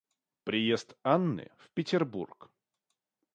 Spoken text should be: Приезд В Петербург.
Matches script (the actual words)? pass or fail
fail